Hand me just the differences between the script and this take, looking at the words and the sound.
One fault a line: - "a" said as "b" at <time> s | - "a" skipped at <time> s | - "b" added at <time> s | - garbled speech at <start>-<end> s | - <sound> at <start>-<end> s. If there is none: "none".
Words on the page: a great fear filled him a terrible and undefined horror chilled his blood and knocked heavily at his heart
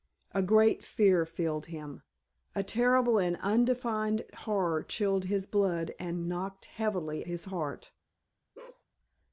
- "at" skipped at 7.2 s
- bark at 8.5-8.8 s